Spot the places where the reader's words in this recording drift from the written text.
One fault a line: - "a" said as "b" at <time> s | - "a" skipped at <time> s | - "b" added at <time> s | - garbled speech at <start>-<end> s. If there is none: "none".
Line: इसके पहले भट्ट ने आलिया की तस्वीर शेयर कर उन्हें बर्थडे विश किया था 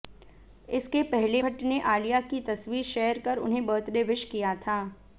none